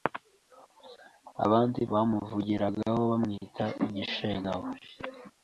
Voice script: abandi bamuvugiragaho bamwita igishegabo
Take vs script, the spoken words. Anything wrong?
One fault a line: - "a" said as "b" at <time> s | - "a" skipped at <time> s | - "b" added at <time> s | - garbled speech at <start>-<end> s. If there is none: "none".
none